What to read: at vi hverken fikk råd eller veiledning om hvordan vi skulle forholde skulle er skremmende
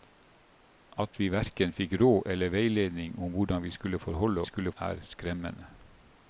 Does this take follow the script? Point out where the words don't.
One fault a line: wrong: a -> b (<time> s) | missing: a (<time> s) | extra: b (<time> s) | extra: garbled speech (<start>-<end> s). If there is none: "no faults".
no faults